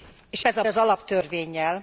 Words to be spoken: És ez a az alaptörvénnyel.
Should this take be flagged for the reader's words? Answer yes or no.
no